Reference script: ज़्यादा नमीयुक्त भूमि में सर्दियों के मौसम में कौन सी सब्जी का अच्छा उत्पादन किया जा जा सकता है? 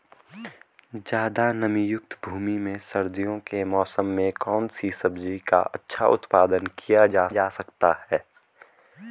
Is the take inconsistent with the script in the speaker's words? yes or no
no